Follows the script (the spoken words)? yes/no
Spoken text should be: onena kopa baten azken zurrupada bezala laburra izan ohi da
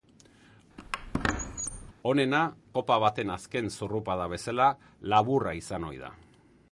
yes